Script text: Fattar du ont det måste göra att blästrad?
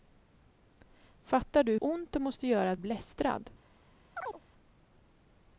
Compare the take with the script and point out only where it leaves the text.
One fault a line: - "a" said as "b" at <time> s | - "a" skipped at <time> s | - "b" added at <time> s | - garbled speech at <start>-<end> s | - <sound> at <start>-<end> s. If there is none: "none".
- chirp at 4.2-4.4 s